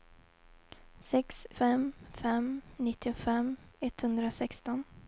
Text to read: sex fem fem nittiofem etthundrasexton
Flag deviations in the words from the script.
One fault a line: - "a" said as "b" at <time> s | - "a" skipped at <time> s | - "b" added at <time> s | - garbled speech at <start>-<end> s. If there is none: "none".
none